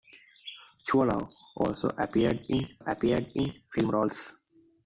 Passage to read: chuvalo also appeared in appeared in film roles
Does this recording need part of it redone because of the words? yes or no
no